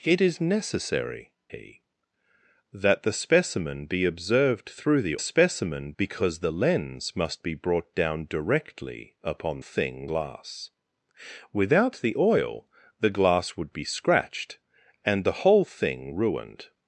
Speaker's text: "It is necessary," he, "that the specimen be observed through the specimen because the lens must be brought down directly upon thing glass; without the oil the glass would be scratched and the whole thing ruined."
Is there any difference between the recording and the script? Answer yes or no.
no